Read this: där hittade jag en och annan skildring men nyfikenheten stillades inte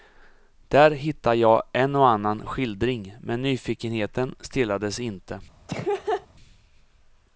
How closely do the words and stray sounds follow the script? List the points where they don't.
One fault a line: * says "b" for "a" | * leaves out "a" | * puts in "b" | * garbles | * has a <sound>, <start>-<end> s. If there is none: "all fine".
* has a laugh, 5.7-6.3 s